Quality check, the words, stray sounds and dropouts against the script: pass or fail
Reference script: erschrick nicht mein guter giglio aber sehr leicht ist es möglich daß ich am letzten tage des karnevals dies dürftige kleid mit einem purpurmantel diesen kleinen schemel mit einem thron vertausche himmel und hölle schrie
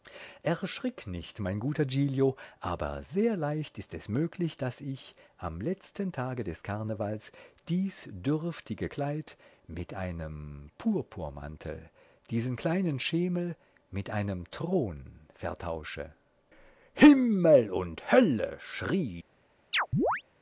fail